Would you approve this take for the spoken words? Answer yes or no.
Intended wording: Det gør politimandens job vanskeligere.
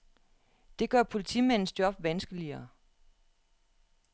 yes